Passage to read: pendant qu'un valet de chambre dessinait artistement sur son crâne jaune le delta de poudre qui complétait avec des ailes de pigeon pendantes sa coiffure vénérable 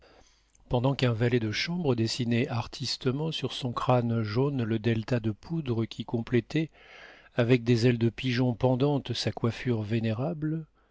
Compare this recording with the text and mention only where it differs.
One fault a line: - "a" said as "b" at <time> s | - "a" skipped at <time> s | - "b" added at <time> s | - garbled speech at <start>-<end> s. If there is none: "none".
none